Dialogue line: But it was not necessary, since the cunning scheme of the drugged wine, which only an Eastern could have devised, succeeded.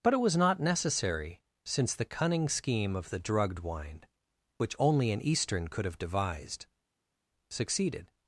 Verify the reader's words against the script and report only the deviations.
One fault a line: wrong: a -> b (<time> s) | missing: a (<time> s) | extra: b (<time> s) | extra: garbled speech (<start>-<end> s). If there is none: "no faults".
no faults